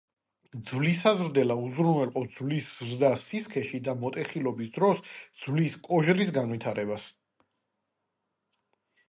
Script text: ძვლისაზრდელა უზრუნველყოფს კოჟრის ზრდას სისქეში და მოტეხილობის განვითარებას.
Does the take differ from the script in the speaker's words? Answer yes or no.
yes